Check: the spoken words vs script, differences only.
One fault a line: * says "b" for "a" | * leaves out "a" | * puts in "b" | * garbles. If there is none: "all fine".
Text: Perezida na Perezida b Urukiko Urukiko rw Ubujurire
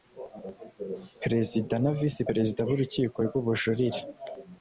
* puts in "Visi"
* leaves out "Urukiko"